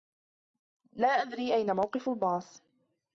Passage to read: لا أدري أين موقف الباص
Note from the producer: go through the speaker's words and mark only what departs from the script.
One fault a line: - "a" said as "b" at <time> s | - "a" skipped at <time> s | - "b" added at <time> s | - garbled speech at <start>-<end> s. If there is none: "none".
none